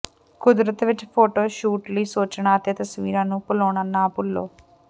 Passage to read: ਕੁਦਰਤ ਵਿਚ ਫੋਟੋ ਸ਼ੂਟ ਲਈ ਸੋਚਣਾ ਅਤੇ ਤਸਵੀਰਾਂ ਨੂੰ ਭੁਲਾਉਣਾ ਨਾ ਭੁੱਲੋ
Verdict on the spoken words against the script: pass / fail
pass